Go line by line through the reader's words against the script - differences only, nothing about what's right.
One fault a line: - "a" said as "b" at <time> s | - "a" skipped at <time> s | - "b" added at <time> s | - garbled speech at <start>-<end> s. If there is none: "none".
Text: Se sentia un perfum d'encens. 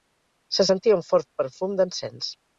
- "fort" added at 1.1 s